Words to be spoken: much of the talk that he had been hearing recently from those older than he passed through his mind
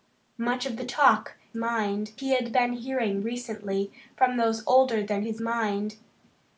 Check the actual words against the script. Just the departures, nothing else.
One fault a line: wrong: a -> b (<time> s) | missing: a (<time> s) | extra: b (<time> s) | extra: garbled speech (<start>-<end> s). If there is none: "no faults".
wrong: that -> mind (1.5 s)
missing: he passed through (5.2 s)